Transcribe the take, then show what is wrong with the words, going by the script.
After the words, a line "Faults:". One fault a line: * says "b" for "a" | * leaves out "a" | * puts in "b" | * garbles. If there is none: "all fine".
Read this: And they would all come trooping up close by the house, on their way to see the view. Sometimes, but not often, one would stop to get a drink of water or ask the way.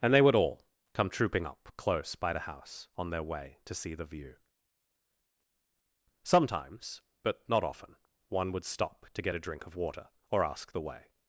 And they would all come trooping up close by the house, on their way to see the view. Sometimes, but not often, one would stop to get a drink of water or ask the way.
Faults:
all fine